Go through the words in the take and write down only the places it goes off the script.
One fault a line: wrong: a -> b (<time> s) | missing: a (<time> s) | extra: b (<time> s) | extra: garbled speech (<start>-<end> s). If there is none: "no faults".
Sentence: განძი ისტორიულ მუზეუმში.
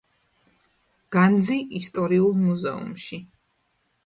no faults